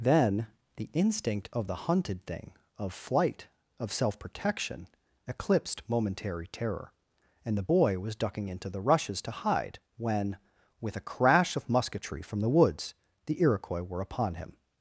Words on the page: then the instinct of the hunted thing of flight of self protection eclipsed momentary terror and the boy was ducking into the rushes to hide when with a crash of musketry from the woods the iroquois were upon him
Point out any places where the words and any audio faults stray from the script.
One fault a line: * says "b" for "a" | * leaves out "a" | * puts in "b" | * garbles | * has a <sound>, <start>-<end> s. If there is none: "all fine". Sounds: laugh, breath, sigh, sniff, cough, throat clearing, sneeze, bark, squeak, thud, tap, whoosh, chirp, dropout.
all fine